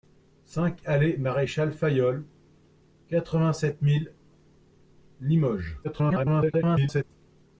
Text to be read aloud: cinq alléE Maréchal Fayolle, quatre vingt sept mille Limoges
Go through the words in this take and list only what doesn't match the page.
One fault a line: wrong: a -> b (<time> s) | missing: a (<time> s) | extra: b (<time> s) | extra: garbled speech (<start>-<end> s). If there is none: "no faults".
extra: garbled speech (5.8-7.0 s)